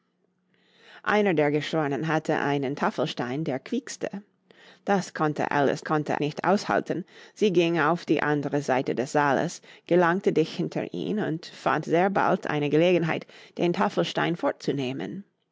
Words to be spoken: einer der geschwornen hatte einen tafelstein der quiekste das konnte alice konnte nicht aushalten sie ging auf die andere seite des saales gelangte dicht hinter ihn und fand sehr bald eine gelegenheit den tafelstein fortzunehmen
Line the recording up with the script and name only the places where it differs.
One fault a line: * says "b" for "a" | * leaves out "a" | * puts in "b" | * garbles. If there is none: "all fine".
all fine